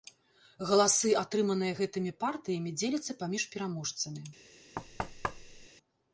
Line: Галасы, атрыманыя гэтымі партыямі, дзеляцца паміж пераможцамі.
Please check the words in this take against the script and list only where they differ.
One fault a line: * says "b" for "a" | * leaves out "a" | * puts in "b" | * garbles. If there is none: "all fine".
all fine